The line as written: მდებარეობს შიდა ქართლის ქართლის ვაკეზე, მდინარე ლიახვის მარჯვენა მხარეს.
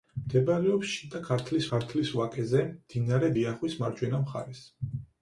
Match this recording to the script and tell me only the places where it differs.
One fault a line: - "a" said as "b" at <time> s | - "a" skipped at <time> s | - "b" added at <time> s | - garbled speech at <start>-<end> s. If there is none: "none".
none